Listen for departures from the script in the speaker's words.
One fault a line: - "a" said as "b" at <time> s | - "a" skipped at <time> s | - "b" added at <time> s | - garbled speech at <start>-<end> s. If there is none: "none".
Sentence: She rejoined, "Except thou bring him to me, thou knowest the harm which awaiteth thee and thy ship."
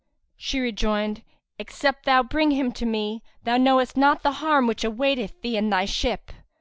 - "not" added at 4.0 s